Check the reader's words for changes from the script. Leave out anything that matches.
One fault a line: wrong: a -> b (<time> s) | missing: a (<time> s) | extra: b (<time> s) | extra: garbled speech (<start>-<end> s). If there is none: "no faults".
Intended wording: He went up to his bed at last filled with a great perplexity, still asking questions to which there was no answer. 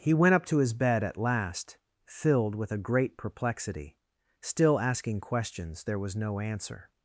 missing: to which (5.8 s)